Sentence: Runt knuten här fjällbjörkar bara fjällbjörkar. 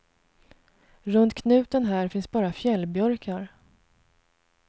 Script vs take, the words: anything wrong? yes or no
yes